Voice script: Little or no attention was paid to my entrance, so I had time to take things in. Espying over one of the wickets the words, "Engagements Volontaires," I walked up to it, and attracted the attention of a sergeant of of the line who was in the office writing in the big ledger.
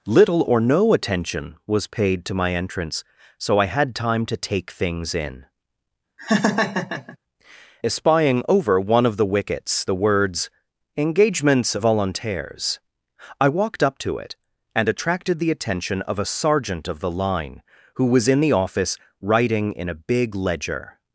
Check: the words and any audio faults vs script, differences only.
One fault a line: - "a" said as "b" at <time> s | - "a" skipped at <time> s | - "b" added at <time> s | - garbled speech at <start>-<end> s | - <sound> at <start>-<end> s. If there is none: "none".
- laugh at 6.2-7.2 s
- "of" skipped at 17.0 s
- "the" said as "a" at 19.9 s